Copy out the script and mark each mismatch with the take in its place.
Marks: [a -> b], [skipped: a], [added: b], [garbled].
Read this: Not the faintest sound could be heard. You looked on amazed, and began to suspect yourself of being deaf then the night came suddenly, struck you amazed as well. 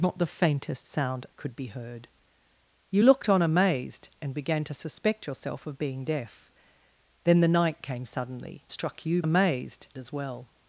Not the faintest sound could be heard. You looked on amazed, and began to suspect yourself of being deaf then the night came suddenly, struck you amazed as well.